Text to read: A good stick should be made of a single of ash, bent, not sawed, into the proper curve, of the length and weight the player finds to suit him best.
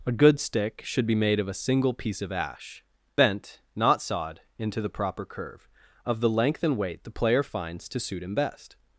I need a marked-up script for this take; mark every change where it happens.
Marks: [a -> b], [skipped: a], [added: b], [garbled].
A good stick should be made of a single [added: piece] of ash, bent, not sawed, into the proper curve, of the length and weight the player finds to suit him best.